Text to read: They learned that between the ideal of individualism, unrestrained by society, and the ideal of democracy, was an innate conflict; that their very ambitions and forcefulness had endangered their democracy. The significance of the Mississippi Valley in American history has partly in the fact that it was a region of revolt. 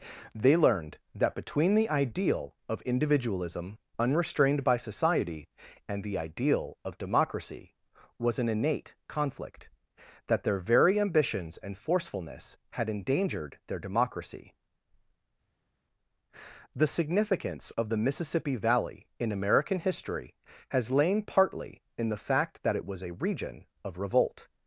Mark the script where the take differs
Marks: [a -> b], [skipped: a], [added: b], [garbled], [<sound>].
They learned that between the ideal of individualism, unrestrained by society, and the ideal of democracy, was an innate conflict; that their very ambitions and forcefulness had endangered their democracy. The significance of the Mississippi Valley in American history has [added: lain] partly in the fact that it was a region of revolt.